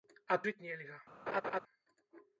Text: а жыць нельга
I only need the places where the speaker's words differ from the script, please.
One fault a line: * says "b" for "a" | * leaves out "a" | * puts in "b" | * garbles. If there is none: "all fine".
all fine